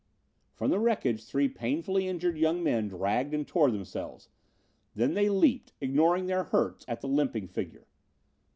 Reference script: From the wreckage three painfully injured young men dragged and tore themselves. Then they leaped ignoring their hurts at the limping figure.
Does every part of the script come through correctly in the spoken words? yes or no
yes